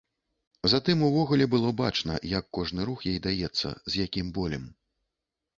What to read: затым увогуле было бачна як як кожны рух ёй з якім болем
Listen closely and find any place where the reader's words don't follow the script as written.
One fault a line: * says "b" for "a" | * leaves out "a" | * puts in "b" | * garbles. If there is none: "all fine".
* leaves out "як"
* puts in "даецца"